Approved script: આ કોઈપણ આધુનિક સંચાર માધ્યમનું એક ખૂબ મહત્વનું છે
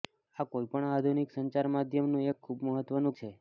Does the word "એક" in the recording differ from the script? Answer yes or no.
no